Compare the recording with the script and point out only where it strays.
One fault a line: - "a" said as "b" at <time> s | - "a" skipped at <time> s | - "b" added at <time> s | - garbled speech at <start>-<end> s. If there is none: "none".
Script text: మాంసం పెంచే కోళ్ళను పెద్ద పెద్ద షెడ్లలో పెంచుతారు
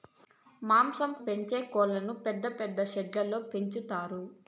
none